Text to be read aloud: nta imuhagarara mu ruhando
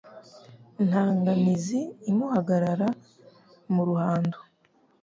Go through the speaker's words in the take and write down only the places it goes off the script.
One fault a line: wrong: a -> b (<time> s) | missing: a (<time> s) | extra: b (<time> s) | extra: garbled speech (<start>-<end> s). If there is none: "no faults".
extra: nganizi (1.2 s)